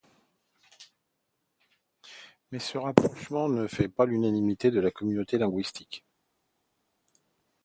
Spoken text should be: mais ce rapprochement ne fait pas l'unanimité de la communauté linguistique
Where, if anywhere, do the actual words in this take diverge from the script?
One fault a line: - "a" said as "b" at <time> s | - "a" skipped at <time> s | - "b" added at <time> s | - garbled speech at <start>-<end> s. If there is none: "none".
none